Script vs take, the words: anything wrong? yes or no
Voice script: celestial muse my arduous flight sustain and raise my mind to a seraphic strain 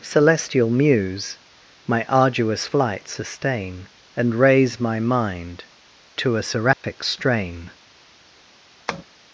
no